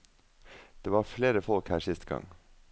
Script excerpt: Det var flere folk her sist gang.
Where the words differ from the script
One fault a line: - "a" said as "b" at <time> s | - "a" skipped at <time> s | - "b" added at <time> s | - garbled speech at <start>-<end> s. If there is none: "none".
none